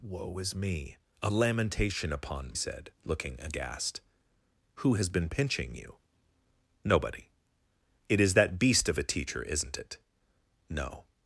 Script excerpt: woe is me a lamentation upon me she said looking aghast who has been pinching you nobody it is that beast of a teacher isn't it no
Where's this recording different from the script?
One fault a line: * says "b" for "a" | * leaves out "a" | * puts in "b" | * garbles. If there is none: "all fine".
* leaves out "me she"